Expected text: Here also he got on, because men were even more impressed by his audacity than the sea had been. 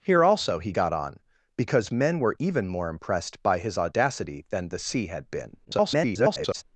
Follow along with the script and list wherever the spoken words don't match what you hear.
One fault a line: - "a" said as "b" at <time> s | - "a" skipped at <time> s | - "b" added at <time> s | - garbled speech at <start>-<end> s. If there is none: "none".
- garbled speech at 5.6-6.6 s